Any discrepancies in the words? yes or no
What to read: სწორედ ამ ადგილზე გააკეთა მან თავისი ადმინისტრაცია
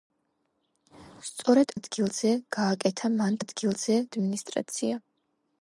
yes